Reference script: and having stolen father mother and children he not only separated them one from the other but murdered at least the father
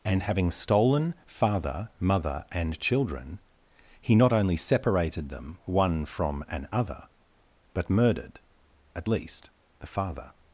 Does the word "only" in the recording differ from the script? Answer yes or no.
no